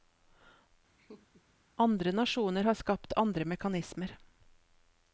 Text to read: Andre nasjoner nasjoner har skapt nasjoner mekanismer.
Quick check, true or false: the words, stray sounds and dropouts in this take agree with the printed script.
false